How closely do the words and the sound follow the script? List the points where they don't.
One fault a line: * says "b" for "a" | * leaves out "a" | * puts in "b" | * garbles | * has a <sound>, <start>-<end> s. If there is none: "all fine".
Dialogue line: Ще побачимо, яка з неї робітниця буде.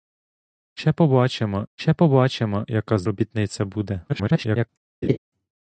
* puts in "ще побачимо"
* leaves out "неї"
* garbles
* has a laugh, 5.0-5.2 s